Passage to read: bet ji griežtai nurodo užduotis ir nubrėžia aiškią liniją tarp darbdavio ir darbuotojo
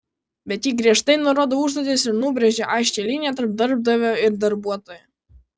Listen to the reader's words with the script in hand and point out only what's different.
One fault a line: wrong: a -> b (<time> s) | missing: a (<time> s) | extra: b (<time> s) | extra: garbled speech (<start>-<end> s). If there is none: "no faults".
no faults